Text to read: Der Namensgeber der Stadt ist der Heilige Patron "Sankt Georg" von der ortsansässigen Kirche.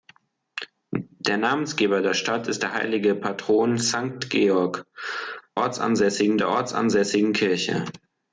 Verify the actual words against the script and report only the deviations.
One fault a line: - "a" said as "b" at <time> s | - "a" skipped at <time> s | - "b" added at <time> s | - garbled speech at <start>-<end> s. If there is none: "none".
- "von" said as "ortsansässigen" at 5.5 s